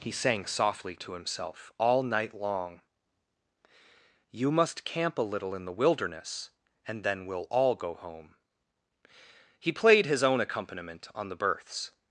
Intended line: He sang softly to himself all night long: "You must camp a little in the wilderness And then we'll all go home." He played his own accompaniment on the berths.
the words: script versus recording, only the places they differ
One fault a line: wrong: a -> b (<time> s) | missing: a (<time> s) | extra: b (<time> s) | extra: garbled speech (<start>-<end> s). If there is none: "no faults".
no faults